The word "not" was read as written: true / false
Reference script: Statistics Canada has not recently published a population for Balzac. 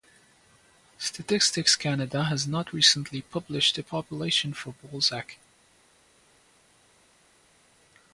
true